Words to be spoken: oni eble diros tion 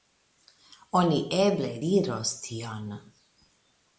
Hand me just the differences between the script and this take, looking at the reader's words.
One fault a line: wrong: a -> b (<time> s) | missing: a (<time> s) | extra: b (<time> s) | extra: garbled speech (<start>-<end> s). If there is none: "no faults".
no faults